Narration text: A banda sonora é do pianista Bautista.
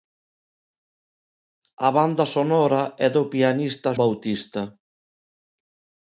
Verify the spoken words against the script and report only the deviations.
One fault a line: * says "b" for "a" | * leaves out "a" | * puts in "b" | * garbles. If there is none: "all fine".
all fine